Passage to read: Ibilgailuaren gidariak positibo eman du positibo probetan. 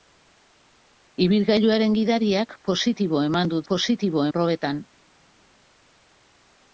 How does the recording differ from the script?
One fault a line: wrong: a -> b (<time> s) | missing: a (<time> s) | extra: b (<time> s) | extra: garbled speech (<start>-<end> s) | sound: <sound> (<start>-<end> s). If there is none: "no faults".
no faults